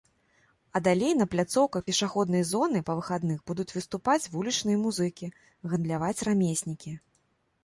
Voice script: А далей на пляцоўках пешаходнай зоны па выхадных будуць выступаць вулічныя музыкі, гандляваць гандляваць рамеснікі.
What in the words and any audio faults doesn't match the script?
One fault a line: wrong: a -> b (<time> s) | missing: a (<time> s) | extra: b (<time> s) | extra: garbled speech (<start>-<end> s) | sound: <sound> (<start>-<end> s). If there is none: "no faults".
missing: гандляваць (6.2 s)